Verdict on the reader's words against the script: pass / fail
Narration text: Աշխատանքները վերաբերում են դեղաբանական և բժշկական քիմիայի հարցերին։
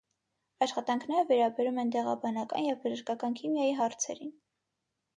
pass